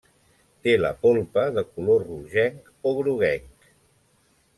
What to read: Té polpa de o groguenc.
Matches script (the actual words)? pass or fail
fail